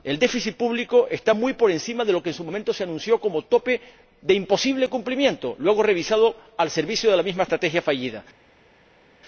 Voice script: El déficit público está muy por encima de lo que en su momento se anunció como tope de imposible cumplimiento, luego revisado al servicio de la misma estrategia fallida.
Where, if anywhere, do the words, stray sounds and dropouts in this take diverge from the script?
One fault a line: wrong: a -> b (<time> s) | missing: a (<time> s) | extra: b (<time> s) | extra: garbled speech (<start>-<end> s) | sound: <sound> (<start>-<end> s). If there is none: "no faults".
no faults